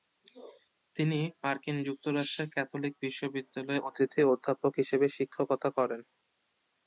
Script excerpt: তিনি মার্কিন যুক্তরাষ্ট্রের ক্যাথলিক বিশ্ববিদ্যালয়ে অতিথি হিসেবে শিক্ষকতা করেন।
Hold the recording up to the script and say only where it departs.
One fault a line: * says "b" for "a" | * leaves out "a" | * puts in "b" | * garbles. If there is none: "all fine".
* puts in "অধ্যাপক"